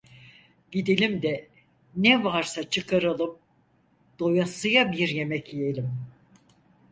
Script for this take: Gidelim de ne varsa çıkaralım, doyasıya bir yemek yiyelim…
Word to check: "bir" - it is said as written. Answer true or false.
true